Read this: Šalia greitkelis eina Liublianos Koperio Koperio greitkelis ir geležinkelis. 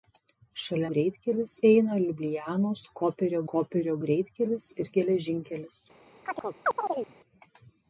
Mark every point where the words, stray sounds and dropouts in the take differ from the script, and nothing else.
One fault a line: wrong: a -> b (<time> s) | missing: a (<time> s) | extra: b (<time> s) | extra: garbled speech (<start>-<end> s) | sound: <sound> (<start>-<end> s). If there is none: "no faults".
sound: chirp (6.2-7.1 s)